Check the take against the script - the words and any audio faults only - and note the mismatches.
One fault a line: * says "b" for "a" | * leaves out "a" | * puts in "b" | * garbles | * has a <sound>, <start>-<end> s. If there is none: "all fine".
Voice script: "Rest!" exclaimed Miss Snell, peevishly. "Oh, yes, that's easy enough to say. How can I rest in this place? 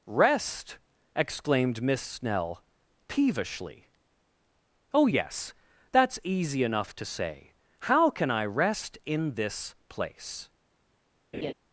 * has a laugh, 11.3-11.5 s